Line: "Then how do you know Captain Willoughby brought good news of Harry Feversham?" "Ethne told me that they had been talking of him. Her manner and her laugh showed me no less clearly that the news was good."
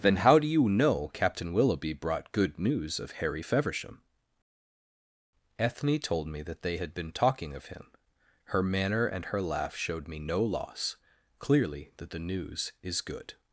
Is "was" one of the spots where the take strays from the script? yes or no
yes